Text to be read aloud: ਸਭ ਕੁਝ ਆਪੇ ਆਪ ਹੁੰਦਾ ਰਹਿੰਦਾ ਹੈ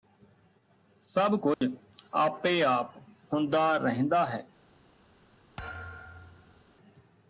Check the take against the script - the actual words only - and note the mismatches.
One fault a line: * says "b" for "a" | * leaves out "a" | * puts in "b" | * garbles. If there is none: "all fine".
all fine